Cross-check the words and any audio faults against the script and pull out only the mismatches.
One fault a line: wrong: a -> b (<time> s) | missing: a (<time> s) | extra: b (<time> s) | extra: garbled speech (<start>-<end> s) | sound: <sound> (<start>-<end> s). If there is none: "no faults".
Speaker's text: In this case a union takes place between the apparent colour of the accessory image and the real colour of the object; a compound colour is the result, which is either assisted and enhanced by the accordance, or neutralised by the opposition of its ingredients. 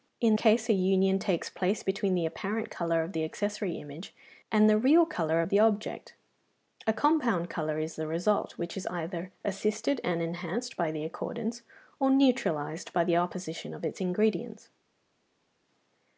missing: this (0.4 s)